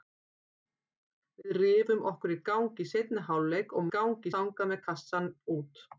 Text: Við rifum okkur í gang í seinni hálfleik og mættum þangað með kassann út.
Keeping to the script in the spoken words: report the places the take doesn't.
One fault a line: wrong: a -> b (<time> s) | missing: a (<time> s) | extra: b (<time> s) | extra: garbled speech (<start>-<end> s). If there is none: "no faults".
wrong: mættum -> gang (4.0 s)